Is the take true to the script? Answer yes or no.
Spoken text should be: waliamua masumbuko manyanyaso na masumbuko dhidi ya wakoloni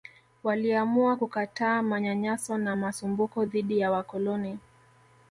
no